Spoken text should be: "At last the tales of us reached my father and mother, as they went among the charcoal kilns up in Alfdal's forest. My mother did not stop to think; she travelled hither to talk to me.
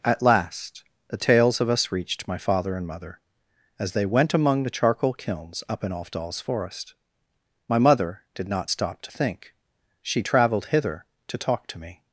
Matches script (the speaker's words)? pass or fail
pass